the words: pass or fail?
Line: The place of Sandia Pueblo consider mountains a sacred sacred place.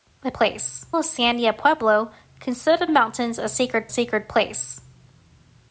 pass